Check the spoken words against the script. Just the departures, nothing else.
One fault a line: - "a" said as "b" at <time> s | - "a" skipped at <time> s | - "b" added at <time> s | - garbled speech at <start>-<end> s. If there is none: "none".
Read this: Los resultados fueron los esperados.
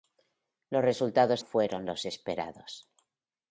none